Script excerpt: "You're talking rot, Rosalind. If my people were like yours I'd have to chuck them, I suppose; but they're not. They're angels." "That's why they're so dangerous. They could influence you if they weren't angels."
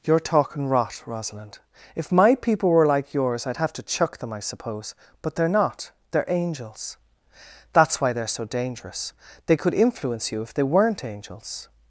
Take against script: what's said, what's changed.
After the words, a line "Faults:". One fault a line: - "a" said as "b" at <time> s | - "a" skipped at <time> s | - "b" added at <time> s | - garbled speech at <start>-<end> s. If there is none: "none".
"You're talking rot, Rosalind. If my people were like yours I'd have to chuck them, I suppose; but they're not. They're angels." "That's why they're so dangerous. They could influence you if they weren't angels."
Faults:
none